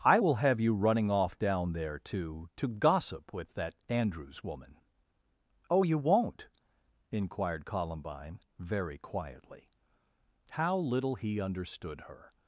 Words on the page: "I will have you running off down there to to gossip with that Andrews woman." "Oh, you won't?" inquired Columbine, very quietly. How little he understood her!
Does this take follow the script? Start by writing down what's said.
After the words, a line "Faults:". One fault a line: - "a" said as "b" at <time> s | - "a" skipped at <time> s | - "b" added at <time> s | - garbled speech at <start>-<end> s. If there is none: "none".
"I will have you running off down there to to gossip with that Andrews woman." "Oh, you won't?" inquired Columbine, very quietly. How little he understood her!
Faults:
none